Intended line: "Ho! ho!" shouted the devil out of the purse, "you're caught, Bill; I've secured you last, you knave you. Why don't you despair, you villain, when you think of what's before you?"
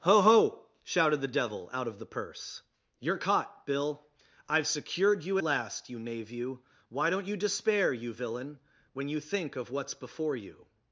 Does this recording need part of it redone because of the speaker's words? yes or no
no